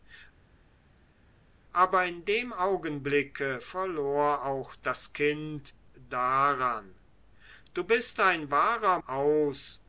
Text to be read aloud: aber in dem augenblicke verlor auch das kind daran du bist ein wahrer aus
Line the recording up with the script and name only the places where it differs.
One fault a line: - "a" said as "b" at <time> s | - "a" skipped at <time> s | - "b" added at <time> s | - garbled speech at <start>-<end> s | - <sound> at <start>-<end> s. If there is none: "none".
none